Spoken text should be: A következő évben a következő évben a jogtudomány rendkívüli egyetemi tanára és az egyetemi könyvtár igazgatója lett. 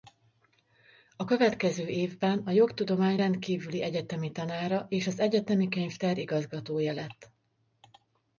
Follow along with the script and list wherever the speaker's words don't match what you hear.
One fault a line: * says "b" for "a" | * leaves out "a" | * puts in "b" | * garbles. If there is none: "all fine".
* leaves out "következő évben a"